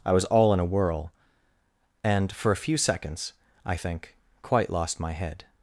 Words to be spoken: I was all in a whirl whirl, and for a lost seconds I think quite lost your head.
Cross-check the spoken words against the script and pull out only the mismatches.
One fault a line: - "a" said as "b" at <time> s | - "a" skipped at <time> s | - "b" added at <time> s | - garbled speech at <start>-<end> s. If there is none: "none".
- "whirl" skipped at 1.1 s
- "lost" said as "few" at 2.6 s
- "your" said as "my" at 5.0 s